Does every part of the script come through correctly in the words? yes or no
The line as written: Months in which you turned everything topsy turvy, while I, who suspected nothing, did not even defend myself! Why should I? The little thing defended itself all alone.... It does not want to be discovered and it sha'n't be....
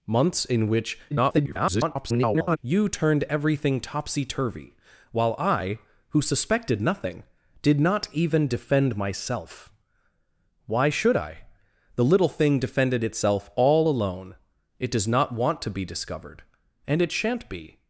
no